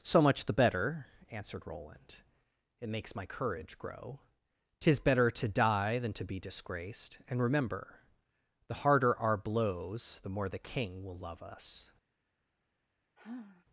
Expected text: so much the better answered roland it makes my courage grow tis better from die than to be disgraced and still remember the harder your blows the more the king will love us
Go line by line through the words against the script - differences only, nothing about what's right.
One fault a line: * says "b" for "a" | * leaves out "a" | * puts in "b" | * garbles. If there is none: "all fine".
* says "to" for "from"
* leaves out "still"
* says "our" for "your"